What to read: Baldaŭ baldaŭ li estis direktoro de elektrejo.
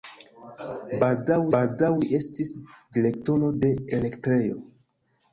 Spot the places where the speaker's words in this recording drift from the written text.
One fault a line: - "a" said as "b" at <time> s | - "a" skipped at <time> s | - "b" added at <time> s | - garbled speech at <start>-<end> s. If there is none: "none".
none